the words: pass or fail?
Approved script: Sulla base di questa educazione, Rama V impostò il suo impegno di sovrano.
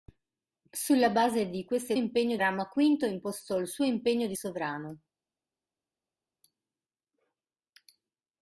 fail